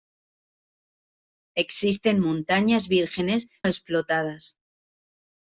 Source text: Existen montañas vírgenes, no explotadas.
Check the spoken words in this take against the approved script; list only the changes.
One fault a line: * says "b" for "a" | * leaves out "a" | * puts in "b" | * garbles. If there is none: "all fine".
* leaves out "no"